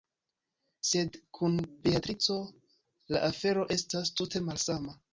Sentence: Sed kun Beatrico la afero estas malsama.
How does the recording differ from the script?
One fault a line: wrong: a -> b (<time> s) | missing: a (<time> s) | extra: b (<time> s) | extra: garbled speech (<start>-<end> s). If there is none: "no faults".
extra: tute (4.2 s)